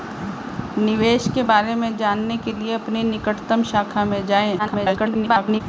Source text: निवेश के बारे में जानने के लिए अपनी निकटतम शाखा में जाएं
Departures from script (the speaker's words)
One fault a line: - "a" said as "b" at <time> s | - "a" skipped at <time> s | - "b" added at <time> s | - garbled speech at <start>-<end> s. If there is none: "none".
- garbled speech at 4.6-5.6 s